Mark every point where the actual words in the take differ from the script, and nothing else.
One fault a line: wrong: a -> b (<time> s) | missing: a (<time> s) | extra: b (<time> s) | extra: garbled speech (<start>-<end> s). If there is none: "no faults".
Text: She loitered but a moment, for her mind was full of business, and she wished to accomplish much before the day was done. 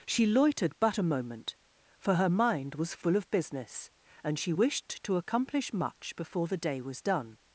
no faults